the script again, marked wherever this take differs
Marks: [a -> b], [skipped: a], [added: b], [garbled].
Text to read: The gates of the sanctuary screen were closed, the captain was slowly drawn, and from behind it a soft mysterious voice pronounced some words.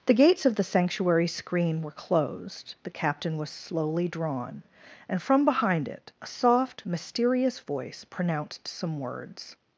The gates of the sanctuary screen were closed, the captain was slowly drawn, and from behind it a soft mysterious voice pronounced some words.